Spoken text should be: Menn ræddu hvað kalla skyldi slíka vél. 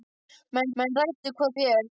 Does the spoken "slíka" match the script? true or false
false